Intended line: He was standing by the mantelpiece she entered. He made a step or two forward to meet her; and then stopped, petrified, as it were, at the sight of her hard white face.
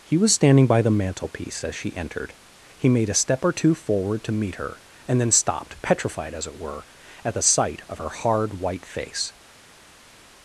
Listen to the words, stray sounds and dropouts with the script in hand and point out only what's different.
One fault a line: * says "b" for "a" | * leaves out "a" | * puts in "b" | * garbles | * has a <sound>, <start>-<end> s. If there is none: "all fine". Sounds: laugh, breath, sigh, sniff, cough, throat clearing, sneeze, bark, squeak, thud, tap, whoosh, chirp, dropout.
* puts in "as"